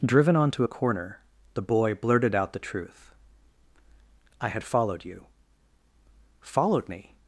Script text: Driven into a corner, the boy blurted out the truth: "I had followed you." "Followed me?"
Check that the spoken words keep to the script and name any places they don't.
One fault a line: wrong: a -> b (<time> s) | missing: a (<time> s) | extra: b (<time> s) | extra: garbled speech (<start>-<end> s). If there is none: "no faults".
wrong: into -> onto (0.3 s)